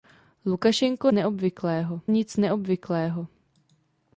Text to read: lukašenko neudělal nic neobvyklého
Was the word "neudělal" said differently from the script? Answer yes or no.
yes